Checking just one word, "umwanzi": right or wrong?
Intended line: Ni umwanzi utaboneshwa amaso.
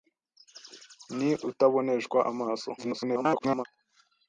wrong